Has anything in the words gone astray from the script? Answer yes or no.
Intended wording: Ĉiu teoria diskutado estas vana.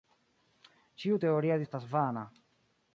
yes